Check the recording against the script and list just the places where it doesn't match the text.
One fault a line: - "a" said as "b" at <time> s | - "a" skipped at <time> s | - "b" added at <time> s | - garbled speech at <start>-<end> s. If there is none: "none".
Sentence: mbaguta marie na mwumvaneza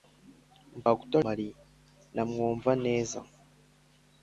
none